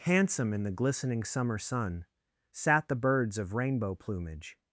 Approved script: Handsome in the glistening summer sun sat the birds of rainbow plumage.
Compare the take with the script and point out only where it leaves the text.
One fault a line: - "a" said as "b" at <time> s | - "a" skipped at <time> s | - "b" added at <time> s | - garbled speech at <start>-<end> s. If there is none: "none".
none